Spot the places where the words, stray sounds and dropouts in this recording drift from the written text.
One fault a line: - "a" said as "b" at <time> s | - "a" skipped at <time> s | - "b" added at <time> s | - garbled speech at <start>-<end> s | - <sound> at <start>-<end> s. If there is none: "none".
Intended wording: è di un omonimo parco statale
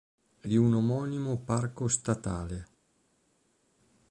none